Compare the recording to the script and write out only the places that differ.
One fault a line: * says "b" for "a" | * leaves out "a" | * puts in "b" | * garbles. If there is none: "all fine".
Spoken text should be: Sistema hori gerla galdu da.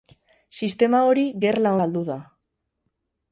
all fine